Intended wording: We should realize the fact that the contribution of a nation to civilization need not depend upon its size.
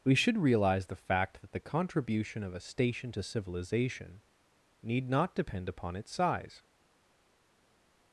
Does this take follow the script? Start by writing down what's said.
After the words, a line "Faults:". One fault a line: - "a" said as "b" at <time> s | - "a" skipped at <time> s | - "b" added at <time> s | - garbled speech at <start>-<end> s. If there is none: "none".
We should realize the fact that the contribution of a station to civilization need not depend upon its size.
Faults:
- "nation" said as "station" at 2.6 s